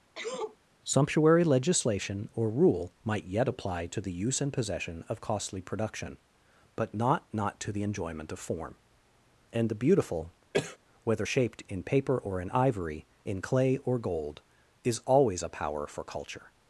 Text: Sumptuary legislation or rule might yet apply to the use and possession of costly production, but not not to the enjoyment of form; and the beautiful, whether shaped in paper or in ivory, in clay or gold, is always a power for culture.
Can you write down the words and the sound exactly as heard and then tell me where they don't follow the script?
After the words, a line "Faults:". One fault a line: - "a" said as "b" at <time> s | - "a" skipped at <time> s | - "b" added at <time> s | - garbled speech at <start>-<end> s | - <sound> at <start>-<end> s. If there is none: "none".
Sumptuary legislation or rule might yet apply to the use and possession of costly production, but not not to the enjoyment of form; and the beautiful, whether shaped in paper or in ivory, in clay or gold, is always a power for culture.
Faults:
- sneeze at 0.2-0.6 s
- cough at 10.5-10.8 s